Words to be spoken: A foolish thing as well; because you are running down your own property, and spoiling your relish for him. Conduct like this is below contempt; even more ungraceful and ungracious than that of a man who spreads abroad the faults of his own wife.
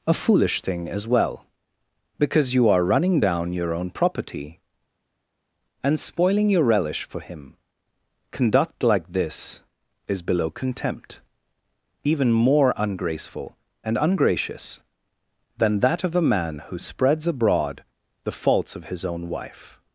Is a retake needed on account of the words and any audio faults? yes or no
no